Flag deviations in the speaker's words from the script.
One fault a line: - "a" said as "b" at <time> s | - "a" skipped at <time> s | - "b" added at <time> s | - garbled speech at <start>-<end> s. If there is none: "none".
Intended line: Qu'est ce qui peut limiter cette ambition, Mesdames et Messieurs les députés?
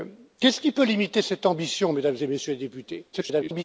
- garbled speech at 3.1-3.6 s